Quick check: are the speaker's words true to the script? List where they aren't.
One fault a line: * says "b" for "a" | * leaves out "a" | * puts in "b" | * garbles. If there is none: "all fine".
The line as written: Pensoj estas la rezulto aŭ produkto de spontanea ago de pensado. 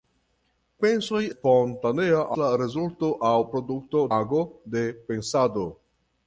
* says "spontanea" for "estas"
* leaves out "de spontanea"